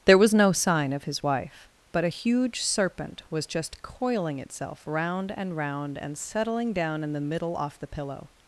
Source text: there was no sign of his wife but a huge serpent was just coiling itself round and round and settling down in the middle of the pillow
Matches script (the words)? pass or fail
fail